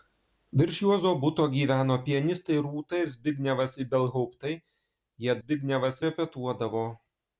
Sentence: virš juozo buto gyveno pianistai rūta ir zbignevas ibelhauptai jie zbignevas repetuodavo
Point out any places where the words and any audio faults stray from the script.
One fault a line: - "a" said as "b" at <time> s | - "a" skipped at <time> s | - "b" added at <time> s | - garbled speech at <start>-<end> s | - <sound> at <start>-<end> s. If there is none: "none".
none